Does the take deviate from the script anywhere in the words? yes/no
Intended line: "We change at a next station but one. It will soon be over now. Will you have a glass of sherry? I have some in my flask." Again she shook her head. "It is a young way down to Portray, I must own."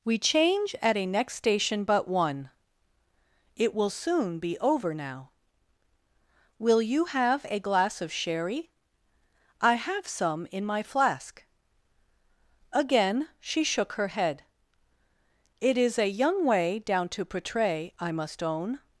no